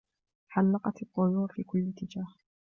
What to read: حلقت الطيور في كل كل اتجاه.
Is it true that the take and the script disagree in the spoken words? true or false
true